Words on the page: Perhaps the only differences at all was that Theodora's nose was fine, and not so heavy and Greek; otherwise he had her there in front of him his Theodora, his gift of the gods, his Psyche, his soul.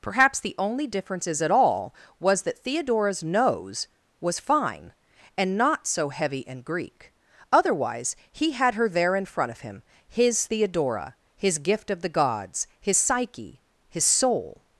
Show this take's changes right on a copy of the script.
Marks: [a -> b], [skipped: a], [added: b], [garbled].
Perhaps the only differences at all was that Theodora's nose was fine, and not so heavy and Greek; otherwise he had her there in front of him his Theodora, his gift of the gods, his Psyche, his soul.